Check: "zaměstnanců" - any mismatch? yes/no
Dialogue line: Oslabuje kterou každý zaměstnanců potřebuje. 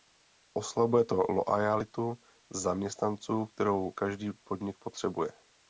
yes